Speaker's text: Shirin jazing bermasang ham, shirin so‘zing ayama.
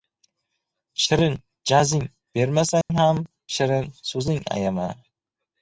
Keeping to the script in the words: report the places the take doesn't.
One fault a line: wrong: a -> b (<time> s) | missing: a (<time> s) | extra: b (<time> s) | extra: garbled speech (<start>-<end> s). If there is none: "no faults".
no faults